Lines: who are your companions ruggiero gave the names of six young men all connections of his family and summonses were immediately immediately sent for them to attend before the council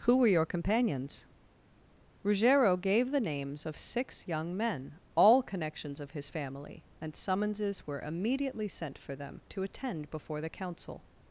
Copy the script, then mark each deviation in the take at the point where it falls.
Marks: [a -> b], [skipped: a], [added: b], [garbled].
who [are -> were] your companions ruggiero gave the names of six young men all connections of his family and summonses were immediately [skipped: immediately] sent for them to attend before the council